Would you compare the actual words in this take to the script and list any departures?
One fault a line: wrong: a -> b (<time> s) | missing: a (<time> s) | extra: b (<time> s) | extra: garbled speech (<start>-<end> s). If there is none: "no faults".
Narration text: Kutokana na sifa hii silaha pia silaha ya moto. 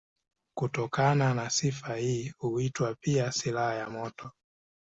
wrong: silaha -> huitwa (2.4 s)